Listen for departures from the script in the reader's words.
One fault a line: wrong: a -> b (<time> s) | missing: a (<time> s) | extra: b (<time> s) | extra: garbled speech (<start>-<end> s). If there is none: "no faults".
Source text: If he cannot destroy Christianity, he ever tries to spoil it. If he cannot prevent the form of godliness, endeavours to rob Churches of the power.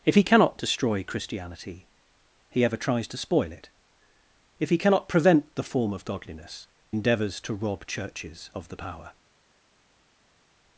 no faults